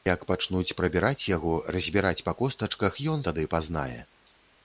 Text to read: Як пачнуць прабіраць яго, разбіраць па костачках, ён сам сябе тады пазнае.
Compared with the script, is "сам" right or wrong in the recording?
wrong